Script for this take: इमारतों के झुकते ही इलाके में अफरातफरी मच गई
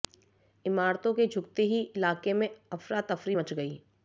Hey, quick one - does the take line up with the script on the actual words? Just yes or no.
yes